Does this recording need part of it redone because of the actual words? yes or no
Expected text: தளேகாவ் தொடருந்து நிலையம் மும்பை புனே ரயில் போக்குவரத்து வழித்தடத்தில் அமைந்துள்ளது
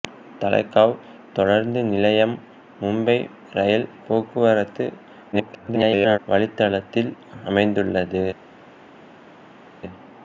yes